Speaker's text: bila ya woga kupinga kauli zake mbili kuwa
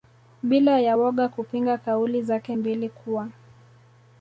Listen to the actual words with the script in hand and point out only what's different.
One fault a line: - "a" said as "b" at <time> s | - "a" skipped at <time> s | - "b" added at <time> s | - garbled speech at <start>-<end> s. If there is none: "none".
none